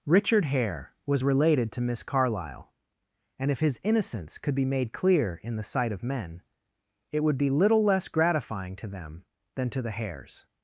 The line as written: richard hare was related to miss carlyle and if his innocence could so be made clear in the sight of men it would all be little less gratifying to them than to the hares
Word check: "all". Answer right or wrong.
wrong